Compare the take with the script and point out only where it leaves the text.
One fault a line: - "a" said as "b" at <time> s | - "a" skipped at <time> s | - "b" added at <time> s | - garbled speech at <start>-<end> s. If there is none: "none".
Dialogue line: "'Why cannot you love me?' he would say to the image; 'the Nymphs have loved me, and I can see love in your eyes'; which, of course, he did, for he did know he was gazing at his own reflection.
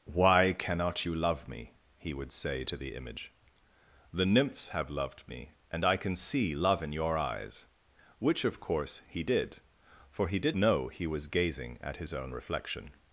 none